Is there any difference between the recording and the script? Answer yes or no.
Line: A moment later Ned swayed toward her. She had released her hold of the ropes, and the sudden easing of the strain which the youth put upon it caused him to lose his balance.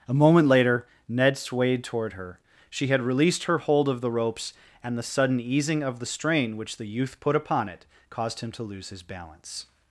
no